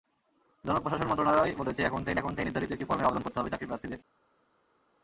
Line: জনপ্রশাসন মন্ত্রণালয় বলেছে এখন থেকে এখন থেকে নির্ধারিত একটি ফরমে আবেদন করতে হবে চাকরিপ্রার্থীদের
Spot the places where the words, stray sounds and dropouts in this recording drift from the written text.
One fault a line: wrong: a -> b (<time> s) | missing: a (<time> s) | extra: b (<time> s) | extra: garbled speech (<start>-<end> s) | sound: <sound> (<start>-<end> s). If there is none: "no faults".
no faults